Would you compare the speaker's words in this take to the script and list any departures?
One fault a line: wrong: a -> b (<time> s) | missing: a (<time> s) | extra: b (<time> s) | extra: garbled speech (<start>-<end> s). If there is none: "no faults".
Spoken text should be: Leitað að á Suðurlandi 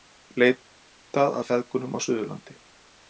extra: feðgum (1.5 s)